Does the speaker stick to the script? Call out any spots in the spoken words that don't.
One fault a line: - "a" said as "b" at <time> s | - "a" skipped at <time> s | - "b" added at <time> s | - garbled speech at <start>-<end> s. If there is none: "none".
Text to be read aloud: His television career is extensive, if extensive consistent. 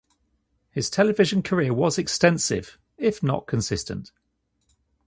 - "is" said as "was" at 1.8 s
- "extensive" said as "not" at 3.2 s